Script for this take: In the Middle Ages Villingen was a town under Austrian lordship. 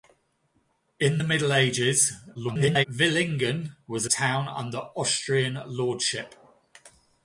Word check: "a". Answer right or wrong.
wrong